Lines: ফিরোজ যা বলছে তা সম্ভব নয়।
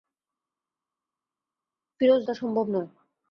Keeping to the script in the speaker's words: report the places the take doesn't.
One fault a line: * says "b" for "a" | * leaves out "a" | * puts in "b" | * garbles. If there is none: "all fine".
* leaves out "যা বলছে"